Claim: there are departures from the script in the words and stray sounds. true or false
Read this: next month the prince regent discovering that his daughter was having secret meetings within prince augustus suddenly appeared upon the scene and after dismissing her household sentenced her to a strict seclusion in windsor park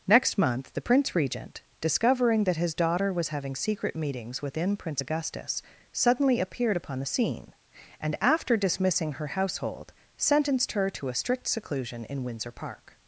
false